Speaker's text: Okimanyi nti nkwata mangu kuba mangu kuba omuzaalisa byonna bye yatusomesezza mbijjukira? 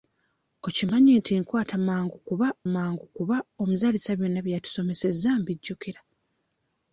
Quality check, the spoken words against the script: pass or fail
pass